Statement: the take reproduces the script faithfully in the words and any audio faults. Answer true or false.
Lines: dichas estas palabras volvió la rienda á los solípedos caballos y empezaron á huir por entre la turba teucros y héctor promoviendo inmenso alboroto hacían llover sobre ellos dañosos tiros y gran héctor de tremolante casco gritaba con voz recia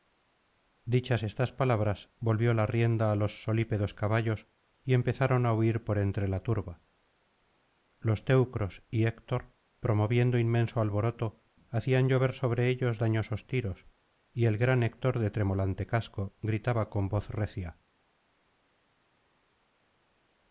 false